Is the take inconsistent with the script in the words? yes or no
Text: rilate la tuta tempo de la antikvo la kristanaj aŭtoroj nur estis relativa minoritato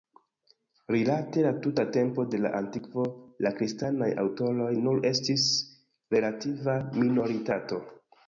no